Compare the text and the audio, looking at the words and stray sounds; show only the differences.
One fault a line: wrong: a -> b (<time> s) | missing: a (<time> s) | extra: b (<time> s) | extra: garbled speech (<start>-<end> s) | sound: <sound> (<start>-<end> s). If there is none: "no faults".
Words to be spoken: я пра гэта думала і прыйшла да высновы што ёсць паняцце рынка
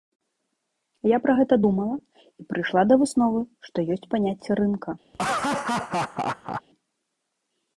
sound: laugh (5.1-6.6 s)